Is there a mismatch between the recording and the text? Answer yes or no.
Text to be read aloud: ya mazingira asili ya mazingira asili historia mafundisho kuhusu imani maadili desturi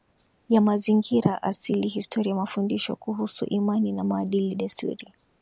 yes